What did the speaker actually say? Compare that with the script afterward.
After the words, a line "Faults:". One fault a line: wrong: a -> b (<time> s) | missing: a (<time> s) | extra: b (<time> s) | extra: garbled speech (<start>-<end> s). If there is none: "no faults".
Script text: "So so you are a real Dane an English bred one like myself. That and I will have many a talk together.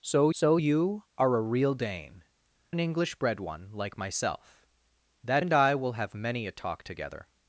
"So so you are a real Dane an English bred one like myself. That and I will have many a talk together.
Faults:
no faults